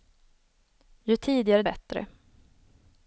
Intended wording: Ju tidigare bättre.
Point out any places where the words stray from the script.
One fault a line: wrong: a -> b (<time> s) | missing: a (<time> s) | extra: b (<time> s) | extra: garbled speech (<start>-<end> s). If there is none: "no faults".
no faults